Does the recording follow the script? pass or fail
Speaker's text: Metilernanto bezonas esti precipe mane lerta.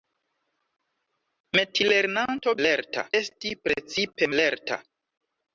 fail